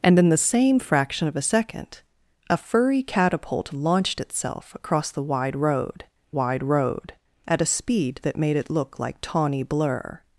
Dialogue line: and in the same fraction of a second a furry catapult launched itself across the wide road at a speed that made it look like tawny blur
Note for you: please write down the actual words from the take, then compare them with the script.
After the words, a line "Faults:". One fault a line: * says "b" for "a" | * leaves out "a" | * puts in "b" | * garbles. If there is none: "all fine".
and in the same fraction of a second a furry catapult launched itself across the wide road wide road at a speed that made it look like tawny blur
Faults:
* puts in "wide road"